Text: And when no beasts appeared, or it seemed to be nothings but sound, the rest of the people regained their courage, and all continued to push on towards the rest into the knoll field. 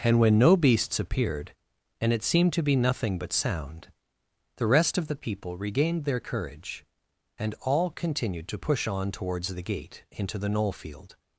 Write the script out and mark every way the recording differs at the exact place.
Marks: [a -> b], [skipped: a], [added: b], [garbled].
And when no beasts appeared, [or -> and] it seemed to be [nothings -> nothing] but sound, the rest of the people regained their courage, and all continued to push on towards the [rest -> gate] into the knoll field.